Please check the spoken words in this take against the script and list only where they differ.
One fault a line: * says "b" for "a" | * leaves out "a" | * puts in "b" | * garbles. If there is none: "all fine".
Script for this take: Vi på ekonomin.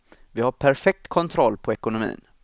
* puts in "har perfekt kontroll"